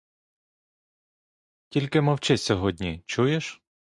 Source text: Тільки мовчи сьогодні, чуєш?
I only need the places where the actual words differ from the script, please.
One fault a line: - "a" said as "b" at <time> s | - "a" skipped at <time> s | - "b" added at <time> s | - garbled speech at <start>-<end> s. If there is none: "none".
none